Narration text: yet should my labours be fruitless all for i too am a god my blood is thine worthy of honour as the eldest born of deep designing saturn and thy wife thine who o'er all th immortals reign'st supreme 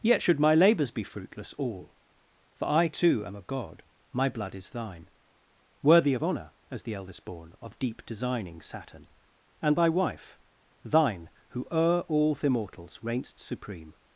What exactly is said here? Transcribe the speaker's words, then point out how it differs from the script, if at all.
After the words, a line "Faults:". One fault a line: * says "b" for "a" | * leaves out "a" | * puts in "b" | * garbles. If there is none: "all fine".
yet should my labours be fruitless all for i too am a god my blood is thine worthy of honour as the eldest born of deep designing saturn and thy wife thine who o'er all th immortals reign'st supreme
Faults:
all fine